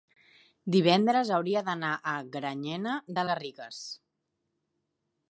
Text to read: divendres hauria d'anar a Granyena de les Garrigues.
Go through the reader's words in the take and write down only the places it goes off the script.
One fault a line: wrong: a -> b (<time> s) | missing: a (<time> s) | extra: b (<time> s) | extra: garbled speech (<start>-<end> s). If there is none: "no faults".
missing: les (3.3 s)